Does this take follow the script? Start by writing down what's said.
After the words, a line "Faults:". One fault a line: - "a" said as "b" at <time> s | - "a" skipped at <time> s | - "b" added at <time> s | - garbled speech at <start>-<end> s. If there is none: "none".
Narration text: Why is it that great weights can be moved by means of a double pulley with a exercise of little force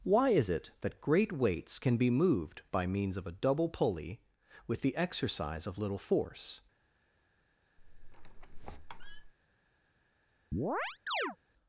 Why is it that great weights can be moved by means of a double pulley with the exercise of little force
Faults:
- "a" said as "the" at 4.8 s